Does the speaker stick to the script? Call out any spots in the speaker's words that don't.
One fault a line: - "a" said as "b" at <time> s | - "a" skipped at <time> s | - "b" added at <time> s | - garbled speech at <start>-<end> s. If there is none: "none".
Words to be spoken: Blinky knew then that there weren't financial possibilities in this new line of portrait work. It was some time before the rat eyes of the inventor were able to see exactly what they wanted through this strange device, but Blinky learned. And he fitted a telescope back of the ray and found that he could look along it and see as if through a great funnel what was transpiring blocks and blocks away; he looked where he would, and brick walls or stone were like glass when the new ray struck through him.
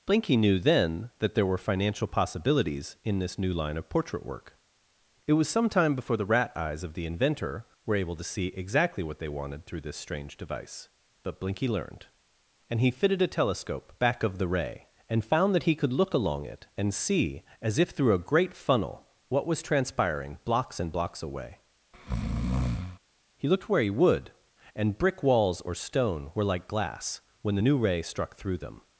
- "weren't" said as "were" at 1.4 s
- "him" said as "them" at 28.6 s